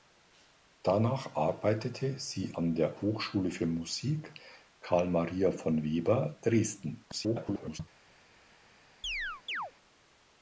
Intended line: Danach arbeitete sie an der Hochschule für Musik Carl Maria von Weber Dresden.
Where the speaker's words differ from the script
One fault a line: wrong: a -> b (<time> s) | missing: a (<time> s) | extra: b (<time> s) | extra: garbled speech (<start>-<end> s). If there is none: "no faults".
extra: garbled speech (7.1-7.8 s)